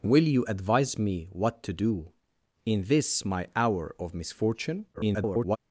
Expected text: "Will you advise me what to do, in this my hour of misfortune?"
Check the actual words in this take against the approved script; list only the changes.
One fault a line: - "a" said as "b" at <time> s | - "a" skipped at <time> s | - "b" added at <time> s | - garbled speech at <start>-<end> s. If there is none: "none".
- garbled speech at 4.9-5.6 s